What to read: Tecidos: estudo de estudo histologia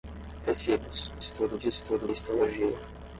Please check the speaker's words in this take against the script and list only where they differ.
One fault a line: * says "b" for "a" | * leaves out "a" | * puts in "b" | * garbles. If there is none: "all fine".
all fine